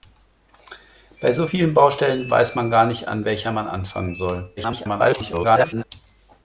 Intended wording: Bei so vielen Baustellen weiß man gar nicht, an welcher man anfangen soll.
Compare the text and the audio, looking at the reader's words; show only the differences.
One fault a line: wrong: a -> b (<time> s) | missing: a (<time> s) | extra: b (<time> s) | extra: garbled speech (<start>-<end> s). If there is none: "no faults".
extra: garbled speech (4.6-5.8 s)